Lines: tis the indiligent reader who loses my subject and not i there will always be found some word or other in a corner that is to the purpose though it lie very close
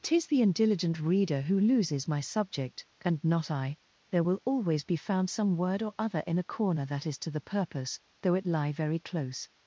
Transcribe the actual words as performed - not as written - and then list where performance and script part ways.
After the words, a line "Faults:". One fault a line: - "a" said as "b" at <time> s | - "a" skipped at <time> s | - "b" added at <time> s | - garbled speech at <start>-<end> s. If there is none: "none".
tis the indiligent reader who loses my subject and not i there will always be found some word or other in a corner that is to the purpose though it lie very close
Faults:
none